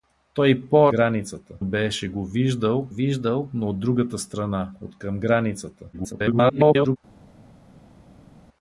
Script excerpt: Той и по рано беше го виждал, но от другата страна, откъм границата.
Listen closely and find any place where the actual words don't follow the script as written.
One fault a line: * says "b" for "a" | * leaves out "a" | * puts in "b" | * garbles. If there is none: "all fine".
* says "границата" for "рано"
* puts in "виждал"
* garbles